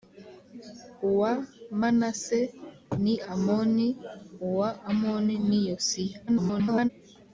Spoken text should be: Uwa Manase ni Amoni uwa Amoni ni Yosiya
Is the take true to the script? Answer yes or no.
no